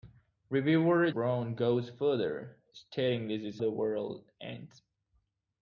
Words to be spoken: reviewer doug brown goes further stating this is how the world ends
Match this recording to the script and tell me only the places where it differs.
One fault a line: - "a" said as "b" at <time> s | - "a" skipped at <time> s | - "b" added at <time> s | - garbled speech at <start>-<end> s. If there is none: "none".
- "doug" skipped at 1.1 s
- "how" skipped at 3.6 s